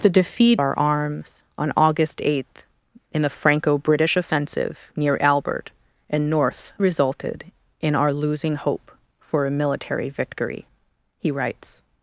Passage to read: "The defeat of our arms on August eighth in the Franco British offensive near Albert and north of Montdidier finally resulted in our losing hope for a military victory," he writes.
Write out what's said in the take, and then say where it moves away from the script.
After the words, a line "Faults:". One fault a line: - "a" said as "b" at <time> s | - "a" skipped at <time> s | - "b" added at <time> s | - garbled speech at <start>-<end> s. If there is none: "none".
"The defeat our arms on August eighth in the Franco British offensive near Albert and north resulted in our losing hope for a military victory," he writes.
Faults:
- "of" skipped at 0.6 s
- "of Montdidier finally" skipped at 6.7 s